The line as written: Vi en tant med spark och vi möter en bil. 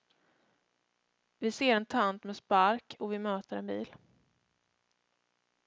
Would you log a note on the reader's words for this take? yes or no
yes